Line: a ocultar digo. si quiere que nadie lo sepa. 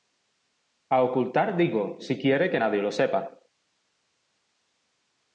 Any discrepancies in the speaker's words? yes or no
no